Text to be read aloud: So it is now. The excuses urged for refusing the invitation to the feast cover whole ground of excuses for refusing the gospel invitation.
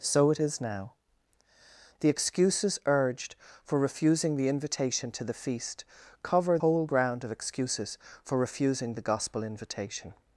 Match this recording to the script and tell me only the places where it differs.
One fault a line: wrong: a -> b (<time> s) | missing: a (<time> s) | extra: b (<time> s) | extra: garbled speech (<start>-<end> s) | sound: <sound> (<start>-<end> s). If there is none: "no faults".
no faults